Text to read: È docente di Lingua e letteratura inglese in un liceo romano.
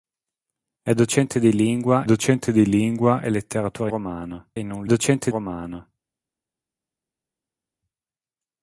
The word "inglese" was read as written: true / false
false